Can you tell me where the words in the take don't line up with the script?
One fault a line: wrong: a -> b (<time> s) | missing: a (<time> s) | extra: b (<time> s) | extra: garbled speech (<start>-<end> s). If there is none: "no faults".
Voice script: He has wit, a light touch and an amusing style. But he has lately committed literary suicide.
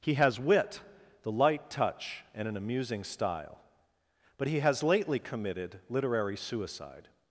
wrong: a -> the (1.2 s)